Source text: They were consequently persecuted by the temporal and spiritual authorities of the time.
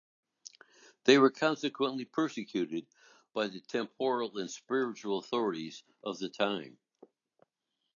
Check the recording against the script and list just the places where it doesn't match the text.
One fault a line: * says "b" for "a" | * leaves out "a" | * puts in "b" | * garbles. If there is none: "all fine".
all fine